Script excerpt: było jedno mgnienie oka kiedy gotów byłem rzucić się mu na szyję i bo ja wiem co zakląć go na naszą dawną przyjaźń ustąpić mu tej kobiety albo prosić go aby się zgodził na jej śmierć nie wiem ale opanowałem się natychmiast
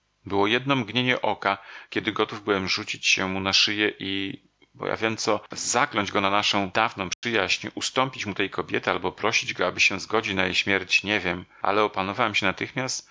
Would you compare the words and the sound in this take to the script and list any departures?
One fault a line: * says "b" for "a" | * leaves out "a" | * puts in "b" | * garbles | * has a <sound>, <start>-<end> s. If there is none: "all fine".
* has a dropout, 7.1-7.2 s